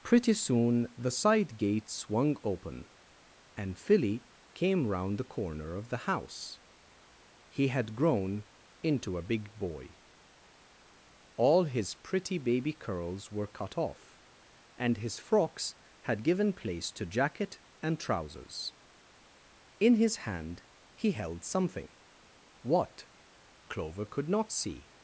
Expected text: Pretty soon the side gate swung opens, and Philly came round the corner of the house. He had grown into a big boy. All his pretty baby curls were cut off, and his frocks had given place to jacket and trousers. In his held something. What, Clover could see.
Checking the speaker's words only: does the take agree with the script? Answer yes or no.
no